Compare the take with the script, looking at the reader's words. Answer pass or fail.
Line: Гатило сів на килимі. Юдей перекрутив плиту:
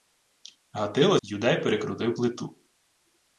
fail